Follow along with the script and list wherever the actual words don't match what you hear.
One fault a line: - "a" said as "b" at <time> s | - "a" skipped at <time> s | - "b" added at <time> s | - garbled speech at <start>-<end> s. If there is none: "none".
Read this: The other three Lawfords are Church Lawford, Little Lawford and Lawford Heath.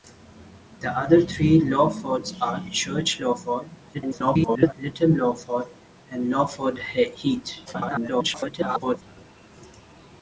- garbled speech at 3.9-4.7 s
- garbled speech at 7.7-9.0 s